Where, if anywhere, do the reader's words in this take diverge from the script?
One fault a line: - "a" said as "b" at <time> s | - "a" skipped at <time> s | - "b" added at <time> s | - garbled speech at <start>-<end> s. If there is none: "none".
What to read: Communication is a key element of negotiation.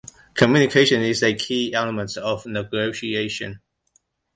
none